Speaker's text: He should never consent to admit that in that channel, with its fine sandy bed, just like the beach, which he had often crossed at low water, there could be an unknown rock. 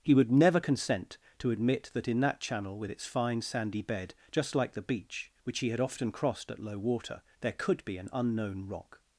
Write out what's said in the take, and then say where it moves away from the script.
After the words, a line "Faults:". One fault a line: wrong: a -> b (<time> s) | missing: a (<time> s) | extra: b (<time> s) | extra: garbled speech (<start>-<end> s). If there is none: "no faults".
He would never consent to admit that in that channel, with its fine sandy bed, just like the beach, which he had often crossed at low water, there could be an unknown rock.
Faults:
wrong: should -> would (0.1 s)